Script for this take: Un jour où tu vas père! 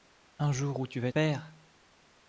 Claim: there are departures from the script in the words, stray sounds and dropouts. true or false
false